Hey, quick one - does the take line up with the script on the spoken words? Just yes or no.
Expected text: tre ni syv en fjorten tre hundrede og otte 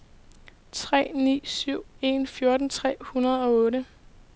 yes